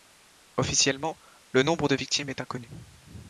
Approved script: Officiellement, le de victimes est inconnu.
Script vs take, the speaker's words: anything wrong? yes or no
yes